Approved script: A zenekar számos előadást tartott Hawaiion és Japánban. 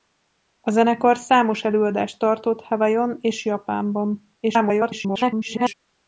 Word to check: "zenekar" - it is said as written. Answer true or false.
true